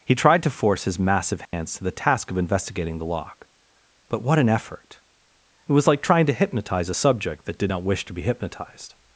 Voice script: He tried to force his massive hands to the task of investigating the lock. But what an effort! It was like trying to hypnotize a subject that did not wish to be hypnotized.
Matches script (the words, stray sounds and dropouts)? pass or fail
fail